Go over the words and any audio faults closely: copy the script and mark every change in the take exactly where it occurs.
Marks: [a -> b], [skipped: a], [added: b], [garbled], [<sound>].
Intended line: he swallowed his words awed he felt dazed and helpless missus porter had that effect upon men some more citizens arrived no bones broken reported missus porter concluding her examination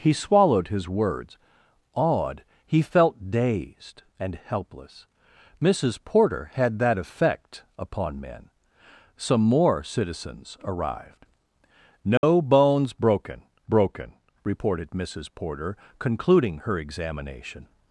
he swallowed his words awed he felt dazed and helpless missus porter had that effect upon men some more citizens arrived no [dropout] bones broken [added: broken] reported missus porter concluding her examination